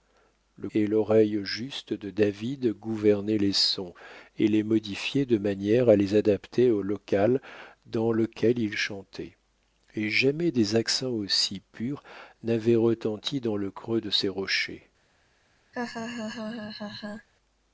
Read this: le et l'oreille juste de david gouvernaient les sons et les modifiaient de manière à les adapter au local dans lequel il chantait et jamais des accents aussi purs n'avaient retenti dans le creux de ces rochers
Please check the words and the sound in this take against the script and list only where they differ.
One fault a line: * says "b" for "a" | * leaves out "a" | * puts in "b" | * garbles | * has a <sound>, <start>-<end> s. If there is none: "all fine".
* has a laugh, 15.7-17.3 s